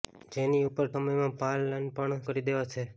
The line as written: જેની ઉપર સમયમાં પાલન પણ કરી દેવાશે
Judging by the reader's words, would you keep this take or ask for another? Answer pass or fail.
pass